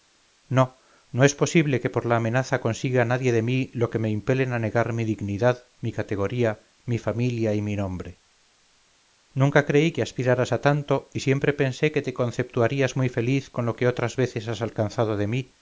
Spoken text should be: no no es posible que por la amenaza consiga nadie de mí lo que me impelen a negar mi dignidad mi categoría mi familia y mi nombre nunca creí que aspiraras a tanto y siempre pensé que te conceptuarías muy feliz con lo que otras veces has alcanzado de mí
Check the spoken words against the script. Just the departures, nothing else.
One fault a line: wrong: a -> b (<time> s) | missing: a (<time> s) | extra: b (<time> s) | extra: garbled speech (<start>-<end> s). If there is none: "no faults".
no faults